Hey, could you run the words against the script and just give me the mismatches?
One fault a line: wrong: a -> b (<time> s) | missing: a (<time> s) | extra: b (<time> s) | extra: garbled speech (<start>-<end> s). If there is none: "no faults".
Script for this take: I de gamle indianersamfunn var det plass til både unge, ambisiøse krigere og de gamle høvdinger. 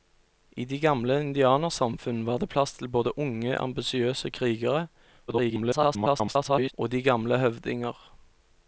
extra: garbled speech (5.3-6.7 s)